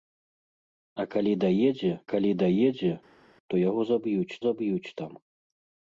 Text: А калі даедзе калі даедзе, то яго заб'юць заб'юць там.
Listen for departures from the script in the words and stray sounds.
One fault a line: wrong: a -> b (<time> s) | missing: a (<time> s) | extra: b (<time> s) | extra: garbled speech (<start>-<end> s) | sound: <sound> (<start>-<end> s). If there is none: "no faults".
no faults